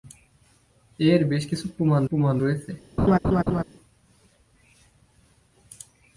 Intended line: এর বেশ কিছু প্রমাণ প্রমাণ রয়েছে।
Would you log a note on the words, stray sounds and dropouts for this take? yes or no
yes